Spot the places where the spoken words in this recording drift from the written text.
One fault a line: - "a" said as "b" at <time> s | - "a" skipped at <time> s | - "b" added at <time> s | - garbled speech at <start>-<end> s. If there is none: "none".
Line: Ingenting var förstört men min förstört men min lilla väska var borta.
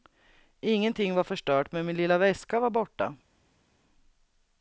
- "förstört men min" skipped at 2.0 s